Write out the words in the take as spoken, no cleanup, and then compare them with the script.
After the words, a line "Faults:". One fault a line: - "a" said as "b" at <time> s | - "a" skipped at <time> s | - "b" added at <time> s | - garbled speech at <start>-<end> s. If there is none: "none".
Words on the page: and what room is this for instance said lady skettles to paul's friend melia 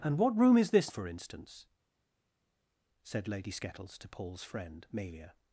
and what room is this for instance said lady skettles to paul's friend melia
Faults:
none